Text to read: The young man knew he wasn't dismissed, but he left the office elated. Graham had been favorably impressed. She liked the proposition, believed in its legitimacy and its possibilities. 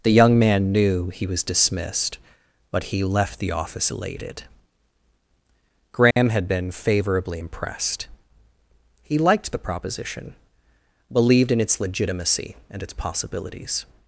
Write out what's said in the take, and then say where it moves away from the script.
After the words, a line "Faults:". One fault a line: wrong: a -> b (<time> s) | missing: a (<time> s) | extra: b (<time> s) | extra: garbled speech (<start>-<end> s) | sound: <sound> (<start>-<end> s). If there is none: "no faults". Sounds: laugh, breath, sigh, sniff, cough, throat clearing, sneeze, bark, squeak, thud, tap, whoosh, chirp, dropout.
The young man knew he was dismissed, but he left the office elated. Graham had been favorably impressed. He liked the proposition, believed in its legitimacy and its possibilities.
Faults:
wrong: wasn't -> was (1.3 s)
sound: dropout (6.1-6.2 s)
wrong: She -> He (9.0 s)